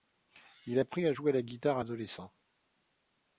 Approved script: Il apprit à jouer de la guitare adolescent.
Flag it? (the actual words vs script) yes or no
no